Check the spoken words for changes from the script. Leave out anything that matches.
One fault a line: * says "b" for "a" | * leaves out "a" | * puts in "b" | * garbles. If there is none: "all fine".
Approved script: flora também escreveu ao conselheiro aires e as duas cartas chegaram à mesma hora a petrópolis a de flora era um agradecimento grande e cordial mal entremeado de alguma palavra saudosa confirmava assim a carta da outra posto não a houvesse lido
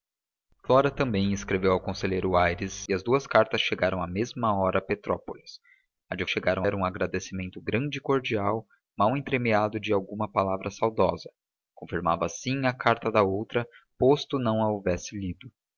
* says "chegaram" for "flora"